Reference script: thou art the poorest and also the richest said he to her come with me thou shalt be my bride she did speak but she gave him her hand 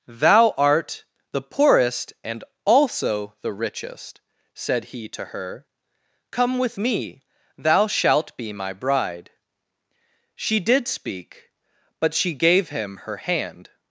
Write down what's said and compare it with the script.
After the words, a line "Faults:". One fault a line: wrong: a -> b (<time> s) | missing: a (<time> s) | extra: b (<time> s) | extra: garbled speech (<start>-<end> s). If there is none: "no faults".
thou art the poorest and also the richest said he to her come with me thou shalt be my bride she did speak but she gave him her hand
Faults:
no faults